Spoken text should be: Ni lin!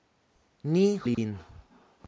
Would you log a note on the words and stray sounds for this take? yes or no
yes